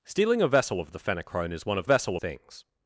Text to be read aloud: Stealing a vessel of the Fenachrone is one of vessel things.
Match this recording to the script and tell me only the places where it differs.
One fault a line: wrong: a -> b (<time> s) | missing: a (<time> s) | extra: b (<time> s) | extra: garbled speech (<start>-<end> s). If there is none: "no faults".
no faults